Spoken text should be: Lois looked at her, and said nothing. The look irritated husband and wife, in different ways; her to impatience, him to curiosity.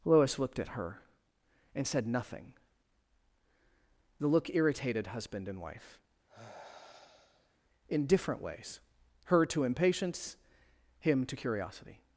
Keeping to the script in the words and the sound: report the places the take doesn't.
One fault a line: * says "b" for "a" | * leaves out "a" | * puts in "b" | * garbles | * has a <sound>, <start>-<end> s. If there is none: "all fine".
* has a sigh, 6.3-7.6 s